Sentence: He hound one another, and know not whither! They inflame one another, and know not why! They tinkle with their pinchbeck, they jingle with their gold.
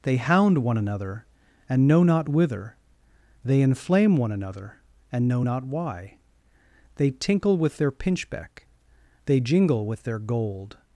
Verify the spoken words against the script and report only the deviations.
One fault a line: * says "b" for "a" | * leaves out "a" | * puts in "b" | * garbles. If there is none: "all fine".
* says "They" for "He"